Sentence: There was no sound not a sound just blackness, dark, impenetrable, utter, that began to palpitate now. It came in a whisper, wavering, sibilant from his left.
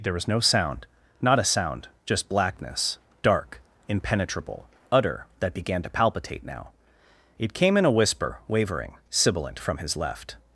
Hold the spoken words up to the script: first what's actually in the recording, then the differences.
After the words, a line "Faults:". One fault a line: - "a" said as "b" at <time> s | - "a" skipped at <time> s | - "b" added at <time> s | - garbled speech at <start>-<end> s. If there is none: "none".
There was no sound not a sound just blackness, dark, impenetrable, utter, that began to palpitate now. It came in a whisper, wavering, sibilant from his left.
Faults:
none